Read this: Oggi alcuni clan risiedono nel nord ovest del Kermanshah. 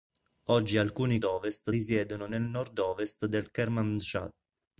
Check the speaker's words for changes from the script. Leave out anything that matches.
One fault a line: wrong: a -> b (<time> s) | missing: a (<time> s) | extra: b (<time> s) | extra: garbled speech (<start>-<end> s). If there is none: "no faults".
wrong: clan -> ovest (1.2 s)